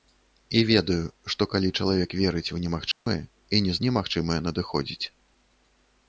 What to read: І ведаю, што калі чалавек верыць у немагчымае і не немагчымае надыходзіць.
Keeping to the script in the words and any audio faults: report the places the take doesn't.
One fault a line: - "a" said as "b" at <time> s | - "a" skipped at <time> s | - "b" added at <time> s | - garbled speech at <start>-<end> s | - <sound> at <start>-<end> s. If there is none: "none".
- dropout at 2.9-3.1 s